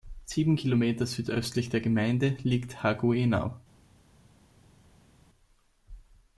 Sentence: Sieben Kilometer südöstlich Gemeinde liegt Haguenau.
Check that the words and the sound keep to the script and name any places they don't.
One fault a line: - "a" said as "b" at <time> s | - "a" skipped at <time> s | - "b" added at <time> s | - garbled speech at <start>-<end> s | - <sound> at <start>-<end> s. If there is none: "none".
- "der" added at 1.7 s